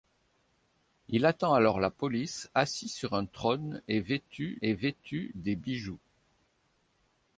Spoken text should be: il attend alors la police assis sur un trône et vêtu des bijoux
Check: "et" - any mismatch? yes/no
no